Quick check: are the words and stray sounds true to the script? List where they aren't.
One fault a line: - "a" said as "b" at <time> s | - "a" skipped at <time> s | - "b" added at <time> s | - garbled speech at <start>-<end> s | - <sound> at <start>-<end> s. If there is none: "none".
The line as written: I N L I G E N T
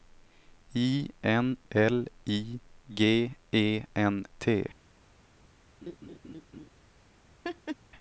- laugh at 5.8-6.7 s
- laugh at 7.4-7.8 s